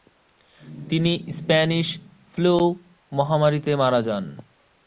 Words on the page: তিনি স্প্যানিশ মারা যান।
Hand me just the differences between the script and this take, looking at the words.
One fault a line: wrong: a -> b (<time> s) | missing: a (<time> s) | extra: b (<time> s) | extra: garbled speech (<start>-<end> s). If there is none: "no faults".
extra: ফ্লু মহামারীতে (2.3 s)